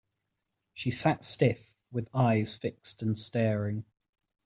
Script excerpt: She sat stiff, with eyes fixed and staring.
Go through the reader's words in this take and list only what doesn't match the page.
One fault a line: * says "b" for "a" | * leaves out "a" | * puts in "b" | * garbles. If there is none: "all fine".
all fine